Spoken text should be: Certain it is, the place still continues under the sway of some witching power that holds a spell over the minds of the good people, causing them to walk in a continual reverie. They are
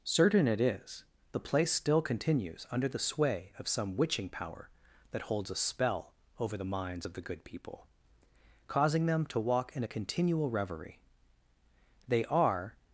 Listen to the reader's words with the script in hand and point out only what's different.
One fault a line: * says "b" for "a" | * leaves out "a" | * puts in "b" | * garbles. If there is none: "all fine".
all fine